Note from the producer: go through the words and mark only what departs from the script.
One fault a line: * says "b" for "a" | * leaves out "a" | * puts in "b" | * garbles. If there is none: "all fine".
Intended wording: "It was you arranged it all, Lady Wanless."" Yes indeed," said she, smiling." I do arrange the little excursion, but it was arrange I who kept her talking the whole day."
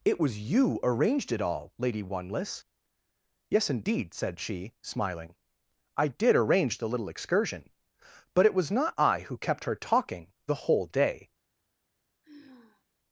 * says "did" for "do"
* says "not" for "arrange"